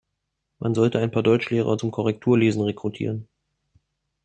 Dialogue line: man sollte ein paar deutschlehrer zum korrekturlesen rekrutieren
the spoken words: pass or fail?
pass